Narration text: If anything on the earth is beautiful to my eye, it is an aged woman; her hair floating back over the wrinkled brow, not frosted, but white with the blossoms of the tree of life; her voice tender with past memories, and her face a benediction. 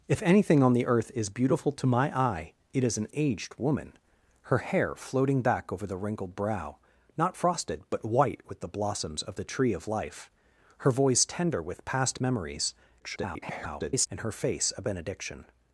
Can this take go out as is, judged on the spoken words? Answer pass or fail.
fail